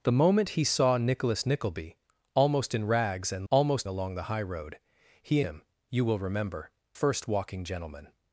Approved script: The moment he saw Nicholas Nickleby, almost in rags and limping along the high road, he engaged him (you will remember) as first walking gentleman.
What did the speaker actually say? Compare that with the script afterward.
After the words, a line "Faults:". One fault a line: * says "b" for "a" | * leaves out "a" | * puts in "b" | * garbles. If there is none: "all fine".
The moment he saw Nicholas Nickleby, almost in rags and almost along the high road, he him (you will remember) first walking gentleman.
Faults:
* says "almost" for "limping"
* leaves out "engaged"
* leaves out "as"